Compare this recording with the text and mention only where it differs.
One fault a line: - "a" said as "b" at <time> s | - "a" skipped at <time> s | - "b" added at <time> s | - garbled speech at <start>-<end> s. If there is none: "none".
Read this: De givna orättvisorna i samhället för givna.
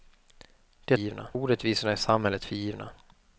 none